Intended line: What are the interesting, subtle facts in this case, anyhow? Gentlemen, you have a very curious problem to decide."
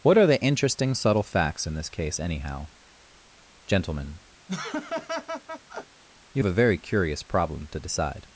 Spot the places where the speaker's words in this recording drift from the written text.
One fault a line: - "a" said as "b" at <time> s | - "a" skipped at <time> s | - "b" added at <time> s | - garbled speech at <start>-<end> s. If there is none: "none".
- "have" skipped at 6.4 s